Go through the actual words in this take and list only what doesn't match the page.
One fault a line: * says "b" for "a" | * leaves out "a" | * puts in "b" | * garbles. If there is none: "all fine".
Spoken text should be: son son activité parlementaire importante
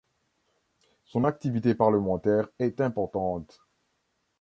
* leaves out "son"
* puts in "est"